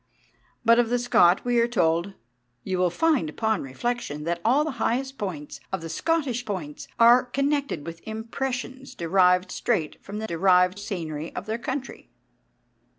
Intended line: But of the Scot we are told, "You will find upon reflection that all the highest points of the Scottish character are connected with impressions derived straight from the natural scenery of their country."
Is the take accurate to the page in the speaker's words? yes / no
no